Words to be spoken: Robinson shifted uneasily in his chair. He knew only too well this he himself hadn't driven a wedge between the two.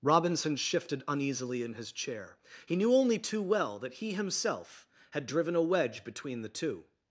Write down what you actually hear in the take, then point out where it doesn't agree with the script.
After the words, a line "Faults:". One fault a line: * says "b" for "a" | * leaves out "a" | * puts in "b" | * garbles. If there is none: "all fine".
Robinson shifted uneasily in his chair. He knew only too well that he himself had driven a wedge between the two.
Faults:
* says "that" for "this"
* says "had" for "hadn't"